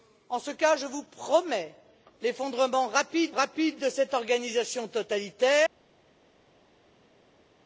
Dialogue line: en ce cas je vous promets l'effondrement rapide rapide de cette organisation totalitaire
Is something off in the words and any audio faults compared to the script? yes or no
no